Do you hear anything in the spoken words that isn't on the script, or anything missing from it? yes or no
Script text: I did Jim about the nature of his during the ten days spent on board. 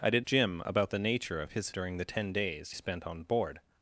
no